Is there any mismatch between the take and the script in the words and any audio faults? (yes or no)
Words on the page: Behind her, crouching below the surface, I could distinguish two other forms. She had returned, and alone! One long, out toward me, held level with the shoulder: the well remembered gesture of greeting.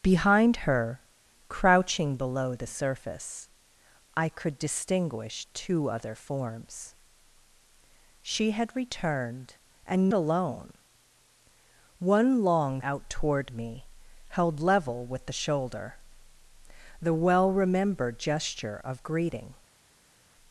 no